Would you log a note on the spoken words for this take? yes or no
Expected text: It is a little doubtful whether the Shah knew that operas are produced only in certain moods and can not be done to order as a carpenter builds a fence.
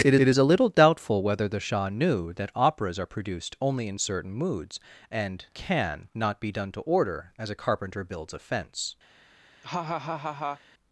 yes